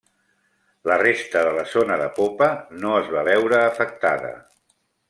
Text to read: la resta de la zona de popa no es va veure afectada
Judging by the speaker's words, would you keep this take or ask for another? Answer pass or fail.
pass